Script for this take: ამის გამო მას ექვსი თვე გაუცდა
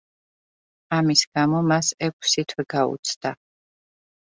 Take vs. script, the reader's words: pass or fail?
pass